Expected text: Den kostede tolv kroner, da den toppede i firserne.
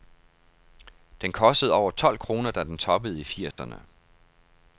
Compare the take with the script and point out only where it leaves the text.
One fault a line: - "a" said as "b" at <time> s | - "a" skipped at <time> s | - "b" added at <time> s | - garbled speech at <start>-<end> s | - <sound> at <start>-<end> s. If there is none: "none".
- "over" added at 1.7 s
- dropout at 3.5-3.6 s